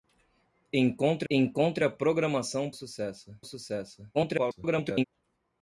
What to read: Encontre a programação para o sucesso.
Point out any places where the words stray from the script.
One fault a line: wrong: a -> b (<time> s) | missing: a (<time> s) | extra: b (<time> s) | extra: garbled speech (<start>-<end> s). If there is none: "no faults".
extra: encontre (1.3 s)
wrong: para -> sucesso (2.7 s)
extra: garbled speech (4.1-5.0 s)